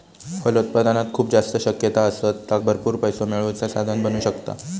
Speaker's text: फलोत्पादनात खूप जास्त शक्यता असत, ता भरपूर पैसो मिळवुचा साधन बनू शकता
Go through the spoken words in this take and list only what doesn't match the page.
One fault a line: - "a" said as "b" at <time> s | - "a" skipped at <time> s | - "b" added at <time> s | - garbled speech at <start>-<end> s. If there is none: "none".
none